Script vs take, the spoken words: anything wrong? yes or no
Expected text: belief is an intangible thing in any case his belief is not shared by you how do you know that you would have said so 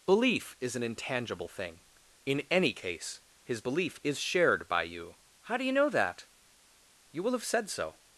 yes